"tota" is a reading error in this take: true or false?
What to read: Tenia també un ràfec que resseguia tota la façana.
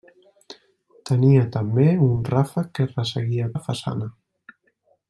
true